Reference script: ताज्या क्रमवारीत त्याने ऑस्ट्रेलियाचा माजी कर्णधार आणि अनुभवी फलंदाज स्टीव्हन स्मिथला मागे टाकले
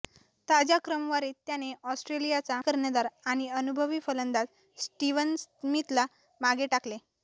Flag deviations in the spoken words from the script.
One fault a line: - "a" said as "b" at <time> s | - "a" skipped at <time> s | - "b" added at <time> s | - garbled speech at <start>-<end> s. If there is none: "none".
- "माजी" skipped at 2.6 s